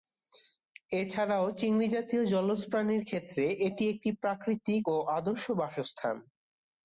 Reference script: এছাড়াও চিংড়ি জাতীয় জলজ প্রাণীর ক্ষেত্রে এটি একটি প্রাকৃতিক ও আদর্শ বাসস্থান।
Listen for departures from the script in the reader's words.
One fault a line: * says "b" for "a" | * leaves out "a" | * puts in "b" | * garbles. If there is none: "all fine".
all fine